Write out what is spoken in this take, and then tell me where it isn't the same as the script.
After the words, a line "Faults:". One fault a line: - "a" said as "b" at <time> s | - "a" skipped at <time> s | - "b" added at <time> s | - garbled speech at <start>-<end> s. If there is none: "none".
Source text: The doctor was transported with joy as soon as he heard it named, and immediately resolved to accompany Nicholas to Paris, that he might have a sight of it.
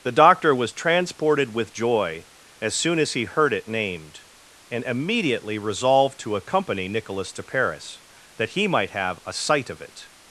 The doctor was transported with joy as soon as he heard it named, and immediately resolved to accompany Nicholas to Paris, that he might have a sight of it.
Faults:
none